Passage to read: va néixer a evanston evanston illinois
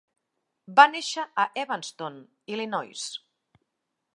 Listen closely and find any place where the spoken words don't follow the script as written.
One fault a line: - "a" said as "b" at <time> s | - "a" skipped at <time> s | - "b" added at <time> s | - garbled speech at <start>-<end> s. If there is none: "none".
- "evanston" skipped at 2.2 s